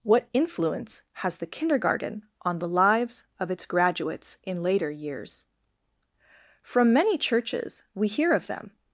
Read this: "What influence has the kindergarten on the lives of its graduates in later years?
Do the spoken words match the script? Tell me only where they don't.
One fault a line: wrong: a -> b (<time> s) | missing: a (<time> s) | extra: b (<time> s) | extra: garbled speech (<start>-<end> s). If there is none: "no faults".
extra: From many churches we hear of them (6.6 s)